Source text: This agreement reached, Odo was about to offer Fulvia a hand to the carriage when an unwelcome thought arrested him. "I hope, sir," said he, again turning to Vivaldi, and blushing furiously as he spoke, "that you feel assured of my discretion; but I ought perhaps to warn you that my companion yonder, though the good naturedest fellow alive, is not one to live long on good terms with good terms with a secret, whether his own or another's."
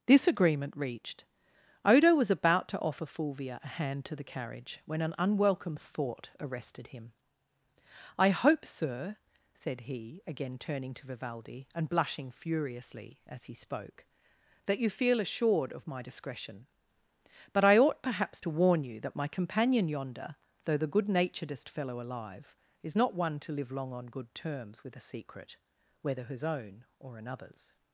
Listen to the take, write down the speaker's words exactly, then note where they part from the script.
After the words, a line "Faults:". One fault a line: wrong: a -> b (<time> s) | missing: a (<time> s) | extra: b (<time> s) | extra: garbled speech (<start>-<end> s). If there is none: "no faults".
This agreement reached, Odo was about to offer Fulvia a hand to the carriage when an unwelcome thought arrested him. "I hope, sir," said he, again turning to Vivaldi, and blushing furiously as he spoke, "that you feel assured of my discretion; but I ought perhaps to warn you that my companion yonder, though the good naturedest fellow alive, is not one to live long on good terms with a secret, whether his own or another's."
Faults:
missing: good terms with (25.0 s)